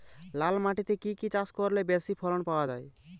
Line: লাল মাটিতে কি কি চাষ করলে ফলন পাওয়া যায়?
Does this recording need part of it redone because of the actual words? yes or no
yes